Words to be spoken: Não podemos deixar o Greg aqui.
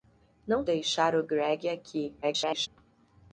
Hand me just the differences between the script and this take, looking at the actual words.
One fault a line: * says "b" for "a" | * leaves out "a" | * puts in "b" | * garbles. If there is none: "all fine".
* leaves out "podemos"
* garbles